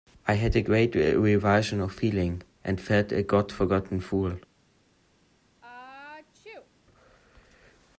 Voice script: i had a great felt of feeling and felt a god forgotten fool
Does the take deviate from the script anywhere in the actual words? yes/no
yes